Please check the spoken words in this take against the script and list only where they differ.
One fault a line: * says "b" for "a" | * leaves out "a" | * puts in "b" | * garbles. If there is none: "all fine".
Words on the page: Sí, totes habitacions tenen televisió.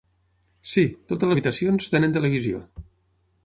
all fine